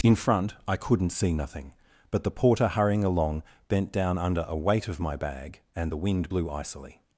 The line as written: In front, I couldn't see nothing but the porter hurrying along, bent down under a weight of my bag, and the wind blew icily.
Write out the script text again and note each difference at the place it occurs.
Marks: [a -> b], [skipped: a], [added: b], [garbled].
In front, I couldn't see nothing but the porter hurrying along, bent down under a weight of my bag, and the wind blew icily.